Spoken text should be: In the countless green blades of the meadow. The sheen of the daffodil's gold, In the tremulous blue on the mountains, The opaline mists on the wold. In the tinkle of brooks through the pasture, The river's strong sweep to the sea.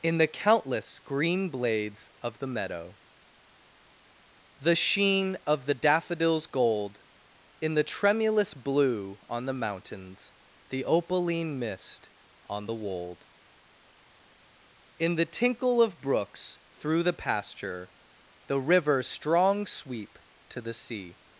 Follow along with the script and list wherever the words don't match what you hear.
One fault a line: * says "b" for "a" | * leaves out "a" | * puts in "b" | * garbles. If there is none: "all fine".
* says "mist" for "mists"